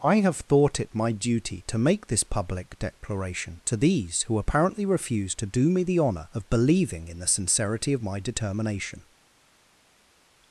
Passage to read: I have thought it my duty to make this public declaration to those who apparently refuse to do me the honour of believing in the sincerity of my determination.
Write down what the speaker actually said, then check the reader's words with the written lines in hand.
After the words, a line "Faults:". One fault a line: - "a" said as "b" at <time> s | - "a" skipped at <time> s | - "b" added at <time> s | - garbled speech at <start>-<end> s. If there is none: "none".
I have thought it my duty to make this public declaration to these who apparently refuse to do me the honour of believing in the sincerity of my determination.
Faults:
- "those" said as "these" at 3.8 s